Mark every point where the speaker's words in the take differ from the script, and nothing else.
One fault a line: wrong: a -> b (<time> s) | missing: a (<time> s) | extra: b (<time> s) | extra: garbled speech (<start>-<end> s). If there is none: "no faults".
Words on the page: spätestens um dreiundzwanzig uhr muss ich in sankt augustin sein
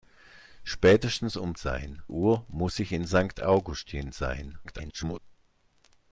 wrong: dreiundzwanzig -> sein (1.6 s)
extra: garbled speech (4.6-5.2 s)